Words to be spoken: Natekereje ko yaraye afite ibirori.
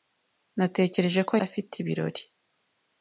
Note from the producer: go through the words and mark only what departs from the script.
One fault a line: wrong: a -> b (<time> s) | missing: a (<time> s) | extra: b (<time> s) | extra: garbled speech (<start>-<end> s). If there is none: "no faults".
missing: yaraye (1.3 s)